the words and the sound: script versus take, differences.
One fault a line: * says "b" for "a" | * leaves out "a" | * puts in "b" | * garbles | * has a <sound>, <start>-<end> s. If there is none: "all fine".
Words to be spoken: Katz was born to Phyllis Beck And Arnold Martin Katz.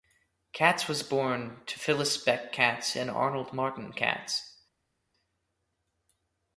* puts in "Katz"